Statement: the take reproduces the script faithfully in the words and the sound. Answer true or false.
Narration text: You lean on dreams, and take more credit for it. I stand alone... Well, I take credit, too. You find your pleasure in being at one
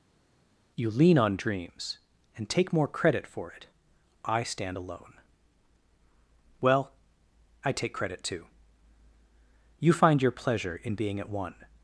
true